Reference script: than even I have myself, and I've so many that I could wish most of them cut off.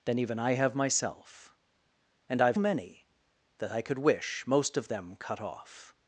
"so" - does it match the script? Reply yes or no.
no